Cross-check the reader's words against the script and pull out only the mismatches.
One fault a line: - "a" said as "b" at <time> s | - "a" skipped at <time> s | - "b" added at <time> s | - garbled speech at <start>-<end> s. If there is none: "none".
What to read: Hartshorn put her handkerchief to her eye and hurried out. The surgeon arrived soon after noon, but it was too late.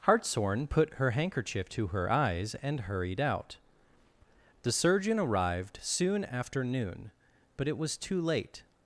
- "eye" said as "eyes" at 2.1 s